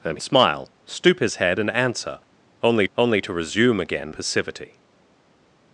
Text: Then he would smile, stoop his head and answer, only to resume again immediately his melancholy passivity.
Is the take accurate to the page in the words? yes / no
no